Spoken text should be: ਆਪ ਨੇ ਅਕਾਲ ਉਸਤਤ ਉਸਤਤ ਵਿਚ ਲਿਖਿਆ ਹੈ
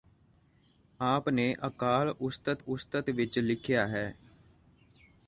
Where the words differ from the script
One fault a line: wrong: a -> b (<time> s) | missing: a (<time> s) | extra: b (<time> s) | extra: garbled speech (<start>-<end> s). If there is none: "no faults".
no faults